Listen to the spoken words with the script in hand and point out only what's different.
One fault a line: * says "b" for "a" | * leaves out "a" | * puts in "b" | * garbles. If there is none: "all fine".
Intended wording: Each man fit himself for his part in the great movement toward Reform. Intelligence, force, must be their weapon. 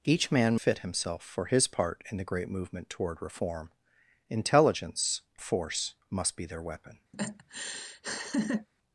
all fine